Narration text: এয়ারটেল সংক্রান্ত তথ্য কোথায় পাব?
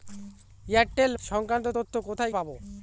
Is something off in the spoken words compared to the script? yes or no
no